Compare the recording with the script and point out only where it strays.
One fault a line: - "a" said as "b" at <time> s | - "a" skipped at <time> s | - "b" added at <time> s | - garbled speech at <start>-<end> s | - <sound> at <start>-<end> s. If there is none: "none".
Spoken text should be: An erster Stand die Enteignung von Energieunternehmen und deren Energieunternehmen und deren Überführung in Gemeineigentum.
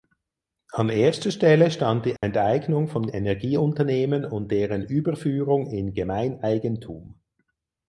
- "Stelle" added at 1.3 s
- dropout at 2.2-2.2 s
- "Energieunternehmen und deren" skipped at 4.9 s